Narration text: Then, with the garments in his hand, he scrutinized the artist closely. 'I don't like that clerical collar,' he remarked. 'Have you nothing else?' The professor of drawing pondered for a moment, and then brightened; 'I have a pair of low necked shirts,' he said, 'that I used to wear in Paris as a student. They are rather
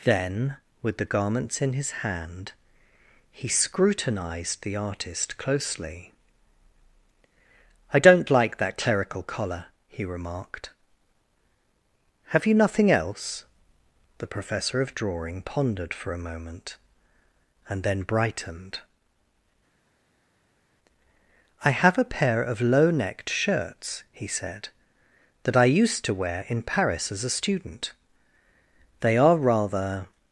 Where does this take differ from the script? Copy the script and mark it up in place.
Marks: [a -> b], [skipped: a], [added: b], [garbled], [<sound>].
Then, with the garments in his hand, he scrutinized the artist closely. 'I don't like that clerical collar,' he remarked. 'Have you nothing else?' The professor of drawing pondered for a moment, and then brightened; 'I have a pair of low necked shirts,' he said, 'that I used to wear in Paris as a student. They are rather